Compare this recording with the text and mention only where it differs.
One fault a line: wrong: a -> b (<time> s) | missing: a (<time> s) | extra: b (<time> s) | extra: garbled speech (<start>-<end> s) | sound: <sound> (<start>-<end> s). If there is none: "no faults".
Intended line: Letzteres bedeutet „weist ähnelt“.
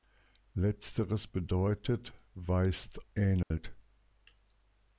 sound: dropout (3.4-3.5 s)